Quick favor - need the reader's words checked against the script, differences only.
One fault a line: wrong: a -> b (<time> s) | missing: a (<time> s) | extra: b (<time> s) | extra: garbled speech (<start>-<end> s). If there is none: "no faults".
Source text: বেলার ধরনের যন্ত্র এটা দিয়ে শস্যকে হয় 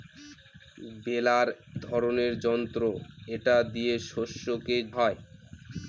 no faults